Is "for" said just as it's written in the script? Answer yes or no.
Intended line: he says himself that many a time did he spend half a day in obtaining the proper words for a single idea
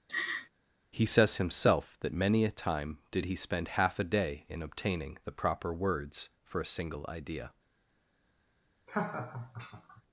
yes